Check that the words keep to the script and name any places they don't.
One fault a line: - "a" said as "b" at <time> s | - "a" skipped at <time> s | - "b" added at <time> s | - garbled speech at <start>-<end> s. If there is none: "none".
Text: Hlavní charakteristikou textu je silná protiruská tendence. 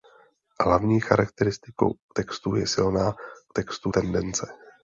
- "protiruská" said as "textu" at 3.5 s